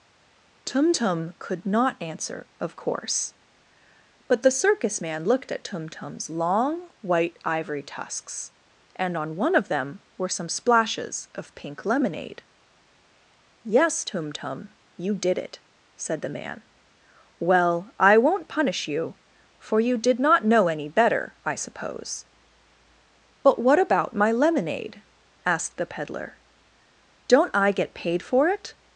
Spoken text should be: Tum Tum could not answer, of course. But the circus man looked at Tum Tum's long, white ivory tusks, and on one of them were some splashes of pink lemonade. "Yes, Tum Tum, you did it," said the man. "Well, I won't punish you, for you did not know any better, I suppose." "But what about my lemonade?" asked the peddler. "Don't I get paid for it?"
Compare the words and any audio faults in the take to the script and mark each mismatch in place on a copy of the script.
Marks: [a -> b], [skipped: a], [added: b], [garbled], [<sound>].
Tum Tum could not answer, of course. But the circus man looked at Tum Tum's long, white ivory tusks, and on one of them were some splashes of pink lemonade. "Yes, Tum Tum, you did it," said the man. "Well, I won't punish you, for you did not know any better, I suppose." "But what about my lemonade?" asked the peddler. "Don't I get paid for it?"